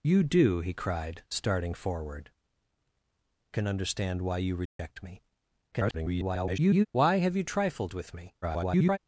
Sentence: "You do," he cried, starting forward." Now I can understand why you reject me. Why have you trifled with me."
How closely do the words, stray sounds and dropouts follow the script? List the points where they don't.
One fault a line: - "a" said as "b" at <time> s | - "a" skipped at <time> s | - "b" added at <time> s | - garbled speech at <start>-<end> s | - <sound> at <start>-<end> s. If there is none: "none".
- "Now I" skipped at 2.3 s
- dropout at 4.7-4.8 s
- garbled speech at 5.7-6.9 s
- garbled speech at 8.4-9.0 s